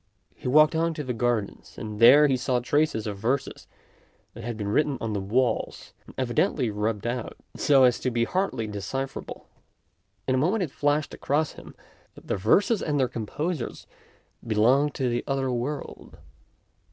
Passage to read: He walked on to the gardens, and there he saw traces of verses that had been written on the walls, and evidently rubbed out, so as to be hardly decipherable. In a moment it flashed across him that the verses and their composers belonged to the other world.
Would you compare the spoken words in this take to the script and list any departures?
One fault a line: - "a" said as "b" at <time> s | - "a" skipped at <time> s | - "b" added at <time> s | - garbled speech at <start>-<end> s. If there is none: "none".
none